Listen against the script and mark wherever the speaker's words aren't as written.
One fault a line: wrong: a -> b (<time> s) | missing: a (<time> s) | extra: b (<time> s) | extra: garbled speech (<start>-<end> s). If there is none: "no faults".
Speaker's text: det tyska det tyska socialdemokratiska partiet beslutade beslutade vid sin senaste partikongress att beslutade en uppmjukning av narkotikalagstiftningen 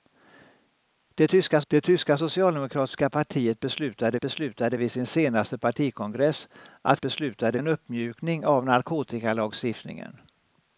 no faults